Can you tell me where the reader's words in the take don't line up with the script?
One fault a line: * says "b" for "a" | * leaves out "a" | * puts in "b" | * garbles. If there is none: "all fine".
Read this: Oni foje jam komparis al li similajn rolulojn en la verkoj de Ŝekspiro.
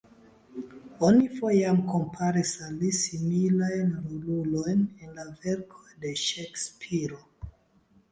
all fine